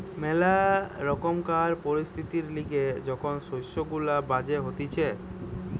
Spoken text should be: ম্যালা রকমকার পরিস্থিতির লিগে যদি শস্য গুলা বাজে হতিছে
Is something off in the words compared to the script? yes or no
yes